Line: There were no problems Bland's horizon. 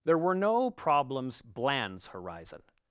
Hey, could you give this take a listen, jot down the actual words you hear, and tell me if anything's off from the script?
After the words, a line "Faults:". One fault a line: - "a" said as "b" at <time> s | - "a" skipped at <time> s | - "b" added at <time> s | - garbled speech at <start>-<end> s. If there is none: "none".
There were no problems Bland's horizon.
Faults:
none